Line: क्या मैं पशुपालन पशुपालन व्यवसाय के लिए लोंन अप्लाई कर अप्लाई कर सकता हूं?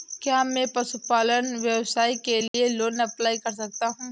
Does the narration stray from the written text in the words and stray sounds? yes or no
yes